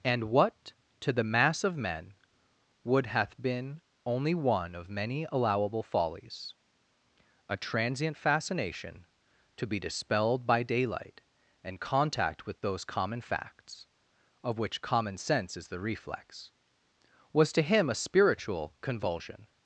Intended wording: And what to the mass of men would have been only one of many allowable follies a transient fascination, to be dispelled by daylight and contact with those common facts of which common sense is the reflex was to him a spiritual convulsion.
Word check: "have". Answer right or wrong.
wrong